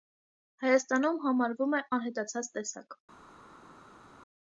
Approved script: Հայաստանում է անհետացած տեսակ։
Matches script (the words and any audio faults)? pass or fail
fail